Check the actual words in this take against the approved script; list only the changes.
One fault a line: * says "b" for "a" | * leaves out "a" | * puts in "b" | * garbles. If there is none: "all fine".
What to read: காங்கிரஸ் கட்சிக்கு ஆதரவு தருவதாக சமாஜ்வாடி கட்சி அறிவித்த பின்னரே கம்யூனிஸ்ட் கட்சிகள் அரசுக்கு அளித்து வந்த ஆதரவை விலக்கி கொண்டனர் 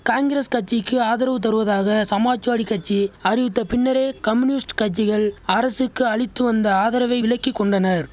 all fine